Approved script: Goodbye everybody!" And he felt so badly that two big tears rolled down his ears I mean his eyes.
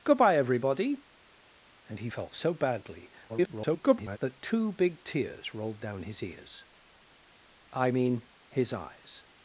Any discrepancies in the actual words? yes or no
yes